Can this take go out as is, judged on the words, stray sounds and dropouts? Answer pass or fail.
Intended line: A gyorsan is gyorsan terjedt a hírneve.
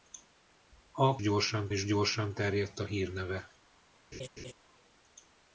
fail